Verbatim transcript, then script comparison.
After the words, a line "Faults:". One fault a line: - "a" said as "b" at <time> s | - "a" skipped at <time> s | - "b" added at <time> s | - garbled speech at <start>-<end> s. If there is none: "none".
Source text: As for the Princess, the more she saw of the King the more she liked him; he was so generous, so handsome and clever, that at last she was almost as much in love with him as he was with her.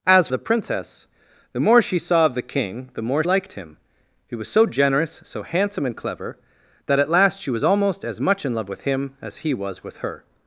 As the Princess, the more she saw of the King the more liked him; he was so generous, so handsome and clever, that at last she was almost as much in love with him as he was with her.
Faults:
- "for" skipped at 0.3 s
- "she" skipped at 3.2 s